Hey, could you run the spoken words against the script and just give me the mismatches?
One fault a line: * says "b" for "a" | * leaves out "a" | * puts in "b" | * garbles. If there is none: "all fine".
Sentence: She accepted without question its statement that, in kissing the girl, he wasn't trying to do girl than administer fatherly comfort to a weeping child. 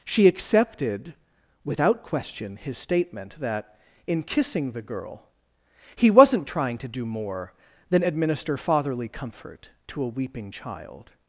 * says "his" for "its"
* says "more" for "girl"